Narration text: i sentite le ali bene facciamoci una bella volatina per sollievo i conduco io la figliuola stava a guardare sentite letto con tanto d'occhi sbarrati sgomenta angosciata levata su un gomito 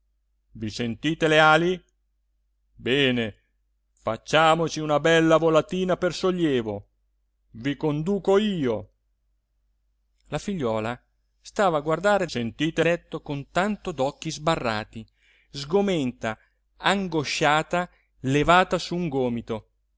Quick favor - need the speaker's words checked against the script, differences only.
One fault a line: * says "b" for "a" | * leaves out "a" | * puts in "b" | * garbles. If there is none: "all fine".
all fine